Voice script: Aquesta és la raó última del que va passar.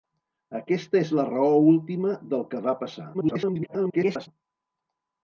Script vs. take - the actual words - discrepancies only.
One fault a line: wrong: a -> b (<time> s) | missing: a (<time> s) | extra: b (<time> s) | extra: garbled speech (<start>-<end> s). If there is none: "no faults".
extra: garbled speech (3.1-4.3 s)